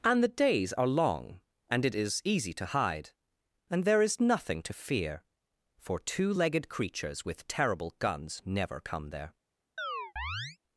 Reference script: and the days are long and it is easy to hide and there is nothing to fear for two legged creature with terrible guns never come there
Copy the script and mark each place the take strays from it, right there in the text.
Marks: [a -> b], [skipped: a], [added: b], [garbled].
and the days are long and it is easy to hide and there is nothing to fear for two legged [creature -> creatures] with terrible guns never come there